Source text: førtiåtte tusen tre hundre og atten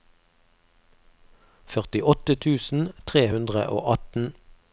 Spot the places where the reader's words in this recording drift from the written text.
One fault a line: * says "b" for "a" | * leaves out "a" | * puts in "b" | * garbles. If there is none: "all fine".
all fine